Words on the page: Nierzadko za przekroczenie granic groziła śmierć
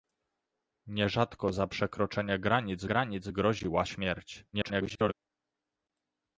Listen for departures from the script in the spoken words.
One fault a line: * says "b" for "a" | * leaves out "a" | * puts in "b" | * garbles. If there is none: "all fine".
* puts in "granic"
* garbles